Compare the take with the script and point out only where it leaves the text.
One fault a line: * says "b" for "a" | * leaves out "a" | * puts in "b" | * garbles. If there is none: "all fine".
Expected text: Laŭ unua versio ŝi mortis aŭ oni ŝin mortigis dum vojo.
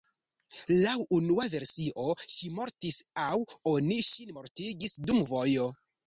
all fine